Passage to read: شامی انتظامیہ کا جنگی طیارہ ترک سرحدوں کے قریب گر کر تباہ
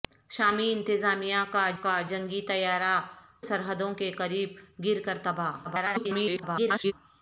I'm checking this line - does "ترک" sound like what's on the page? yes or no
no